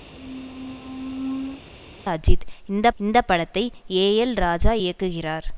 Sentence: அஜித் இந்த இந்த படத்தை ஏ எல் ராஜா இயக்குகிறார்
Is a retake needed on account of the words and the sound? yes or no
yes